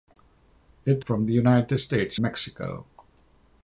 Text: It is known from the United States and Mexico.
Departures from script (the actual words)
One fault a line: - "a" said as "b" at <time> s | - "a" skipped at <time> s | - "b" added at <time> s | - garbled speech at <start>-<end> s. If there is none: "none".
- "is known" skipped at 1.1 s
- "and" skipped at 2.2 s